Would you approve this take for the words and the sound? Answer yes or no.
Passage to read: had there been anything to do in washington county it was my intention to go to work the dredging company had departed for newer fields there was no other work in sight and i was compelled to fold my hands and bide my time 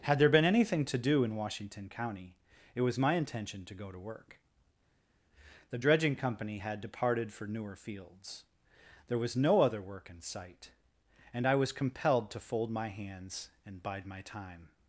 yes